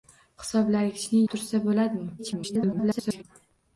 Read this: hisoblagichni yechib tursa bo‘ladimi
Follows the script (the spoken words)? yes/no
no